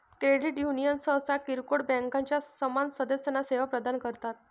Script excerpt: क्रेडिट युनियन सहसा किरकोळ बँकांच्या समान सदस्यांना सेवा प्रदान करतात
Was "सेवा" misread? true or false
false